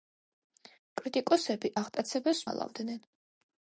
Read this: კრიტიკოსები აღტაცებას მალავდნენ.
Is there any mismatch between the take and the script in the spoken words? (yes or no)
no